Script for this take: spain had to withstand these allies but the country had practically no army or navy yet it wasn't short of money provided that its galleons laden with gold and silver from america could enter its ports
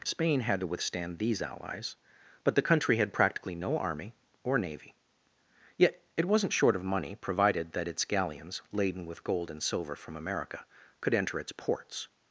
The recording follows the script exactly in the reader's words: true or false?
true